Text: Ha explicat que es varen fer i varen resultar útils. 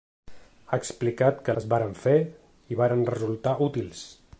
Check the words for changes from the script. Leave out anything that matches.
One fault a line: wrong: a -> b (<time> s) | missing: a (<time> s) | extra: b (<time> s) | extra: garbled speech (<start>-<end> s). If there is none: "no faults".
no faults